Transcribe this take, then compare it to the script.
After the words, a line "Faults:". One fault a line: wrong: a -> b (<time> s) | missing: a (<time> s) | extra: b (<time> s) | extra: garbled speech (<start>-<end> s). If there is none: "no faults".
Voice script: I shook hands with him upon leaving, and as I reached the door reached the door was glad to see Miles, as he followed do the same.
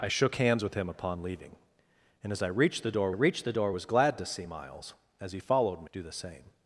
I shook hands with him upon leaving, and as I reached the door reached the door was glad to see Miles, as he followed do the same.
Faults:
no faults